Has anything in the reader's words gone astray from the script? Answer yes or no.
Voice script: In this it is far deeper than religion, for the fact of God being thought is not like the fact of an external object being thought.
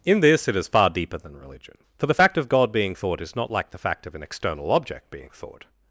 no